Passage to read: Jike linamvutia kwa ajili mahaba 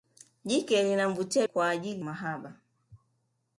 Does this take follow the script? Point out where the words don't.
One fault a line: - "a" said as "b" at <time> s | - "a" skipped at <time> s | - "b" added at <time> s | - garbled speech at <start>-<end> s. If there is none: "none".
none